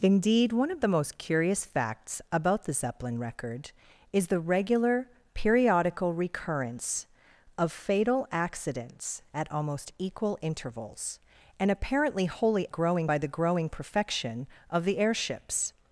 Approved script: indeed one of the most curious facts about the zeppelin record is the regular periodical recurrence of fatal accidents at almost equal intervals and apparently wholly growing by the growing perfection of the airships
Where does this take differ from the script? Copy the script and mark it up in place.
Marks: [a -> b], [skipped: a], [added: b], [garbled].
indeed one of the most curious facts about the zeppelin record is the regular periodical recurrence of fatal accidents at almost equal intervals and apparently wholly growing by the growing perfection of the airships